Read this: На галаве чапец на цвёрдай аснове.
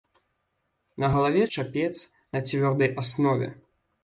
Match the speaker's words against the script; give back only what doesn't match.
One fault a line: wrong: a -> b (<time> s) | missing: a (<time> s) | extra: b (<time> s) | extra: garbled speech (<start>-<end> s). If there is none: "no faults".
no faults